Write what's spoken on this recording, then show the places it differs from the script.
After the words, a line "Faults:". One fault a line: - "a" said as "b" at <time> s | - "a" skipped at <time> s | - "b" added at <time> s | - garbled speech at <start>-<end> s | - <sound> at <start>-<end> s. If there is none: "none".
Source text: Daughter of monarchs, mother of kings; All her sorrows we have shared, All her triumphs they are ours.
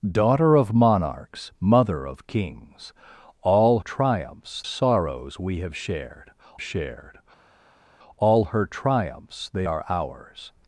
Daughter of monarchs, mother of kings; All triumphs sorrows we have shared shared, All her triumphs they are ours.
Faults:
- "her" said as "triumphs" at 3.8 s
- "shared" added at 6.6 s